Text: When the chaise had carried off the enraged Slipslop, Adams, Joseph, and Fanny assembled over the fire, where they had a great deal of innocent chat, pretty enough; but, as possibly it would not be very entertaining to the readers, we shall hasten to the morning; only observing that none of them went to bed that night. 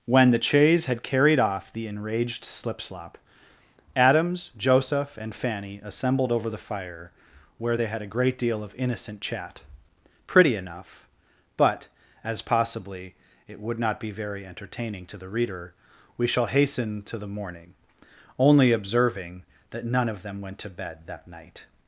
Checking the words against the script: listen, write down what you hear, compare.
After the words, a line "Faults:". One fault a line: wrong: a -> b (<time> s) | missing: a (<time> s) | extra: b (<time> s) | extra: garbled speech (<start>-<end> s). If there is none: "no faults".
When the chaise had carried off the enraged Slipslop, Adams, Joseph, and Fanny assembled over the fire, where they had a great deal of innocent chat, pretty enough; but, as possibly it would not be very entertaining to the reader, we shall hasten to the morning; only observing that none of them went to bed that night.
Faults:
wrong: readers -> reader (15.3 s)